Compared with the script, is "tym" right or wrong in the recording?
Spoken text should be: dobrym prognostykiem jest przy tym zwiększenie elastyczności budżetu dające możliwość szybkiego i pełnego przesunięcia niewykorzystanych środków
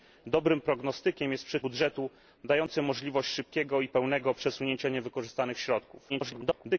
wrong